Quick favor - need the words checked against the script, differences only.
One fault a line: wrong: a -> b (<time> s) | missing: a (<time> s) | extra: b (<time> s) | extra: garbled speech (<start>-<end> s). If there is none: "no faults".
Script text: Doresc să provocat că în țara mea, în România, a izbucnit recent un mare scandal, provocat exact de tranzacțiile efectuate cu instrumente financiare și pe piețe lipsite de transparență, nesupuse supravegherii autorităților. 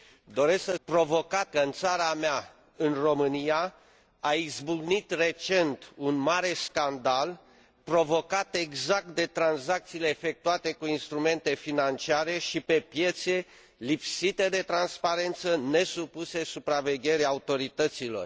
no faults